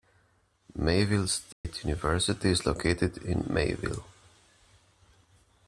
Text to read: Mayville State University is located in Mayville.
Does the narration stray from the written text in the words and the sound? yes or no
yes